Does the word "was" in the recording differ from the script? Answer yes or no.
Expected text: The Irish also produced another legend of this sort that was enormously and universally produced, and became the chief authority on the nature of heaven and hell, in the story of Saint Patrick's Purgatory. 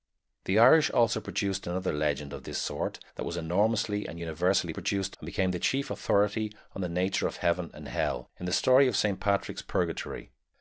no